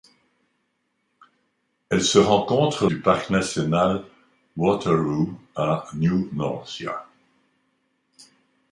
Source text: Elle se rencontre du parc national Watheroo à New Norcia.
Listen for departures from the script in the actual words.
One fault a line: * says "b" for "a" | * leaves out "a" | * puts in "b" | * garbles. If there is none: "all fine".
all fine